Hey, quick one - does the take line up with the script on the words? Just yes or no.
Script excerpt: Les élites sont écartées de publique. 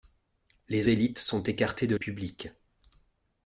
yes